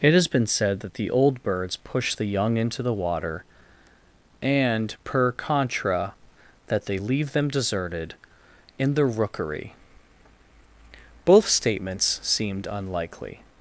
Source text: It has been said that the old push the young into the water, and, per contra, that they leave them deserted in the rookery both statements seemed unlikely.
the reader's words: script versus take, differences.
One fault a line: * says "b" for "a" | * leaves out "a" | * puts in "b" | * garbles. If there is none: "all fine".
* puts in "birds"